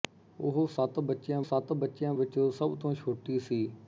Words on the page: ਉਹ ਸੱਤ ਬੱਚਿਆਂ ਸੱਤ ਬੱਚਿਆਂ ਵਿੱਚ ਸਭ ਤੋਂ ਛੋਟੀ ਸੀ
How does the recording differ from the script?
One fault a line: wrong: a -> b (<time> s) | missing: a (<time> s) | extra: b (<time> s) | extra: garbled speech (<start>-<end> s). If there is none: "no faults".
no faults